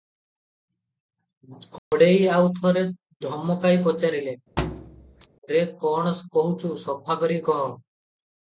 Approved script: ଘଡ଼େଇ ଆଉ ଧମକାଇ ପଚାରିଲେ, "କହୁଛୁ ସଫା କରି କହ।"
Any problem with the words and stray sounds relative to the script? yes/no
yes